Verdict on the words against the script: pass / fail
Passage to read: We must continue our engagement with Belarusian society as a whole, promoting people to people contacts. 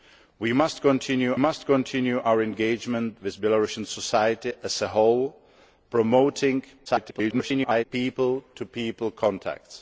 fail